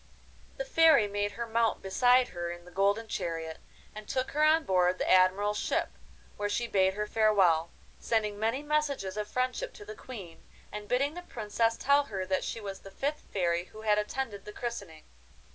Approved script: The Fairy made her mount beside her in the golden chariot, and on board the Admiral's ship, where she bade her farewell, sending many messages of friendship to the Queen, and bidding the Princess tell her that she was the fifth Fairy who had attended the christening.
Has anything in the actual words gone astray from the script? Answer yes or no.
yes